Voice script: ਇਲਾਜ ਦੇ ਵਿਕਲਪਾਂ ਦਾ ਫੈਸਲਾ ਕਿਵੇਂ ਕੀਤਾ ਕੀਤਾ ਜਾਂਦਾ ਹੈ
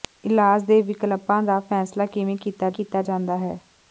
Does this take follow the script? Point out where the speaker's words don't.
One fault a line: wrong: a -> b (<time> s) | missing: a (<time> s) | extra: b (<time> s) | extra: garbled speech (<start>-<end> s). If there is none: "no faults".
no faults